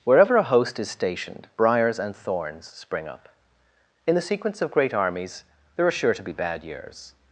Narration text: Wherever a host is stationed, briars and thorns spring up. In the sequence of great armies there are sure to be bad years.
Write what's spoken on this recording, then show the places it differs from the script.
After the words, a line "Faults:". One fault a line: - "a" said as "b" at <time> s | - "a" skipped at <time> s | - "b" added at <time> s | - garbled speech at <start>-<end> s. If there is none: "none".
Wherever a host is stationed, briars and thorns spring up. In the sequence of great armies there are sure to be bad years.
Faults:
none